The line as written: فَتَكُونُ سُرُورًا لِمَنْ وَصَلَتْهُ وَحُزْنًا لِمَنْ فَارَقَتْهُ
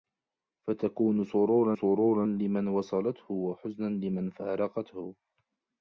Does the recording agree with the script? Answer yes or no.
no